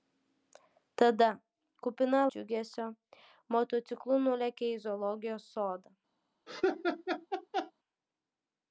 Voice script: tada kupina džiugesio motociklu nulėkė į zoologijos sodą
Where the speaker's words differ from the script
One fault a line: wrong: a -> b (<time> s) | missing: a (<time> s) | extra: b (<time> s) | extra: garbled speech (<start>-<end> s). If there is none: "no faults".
no faults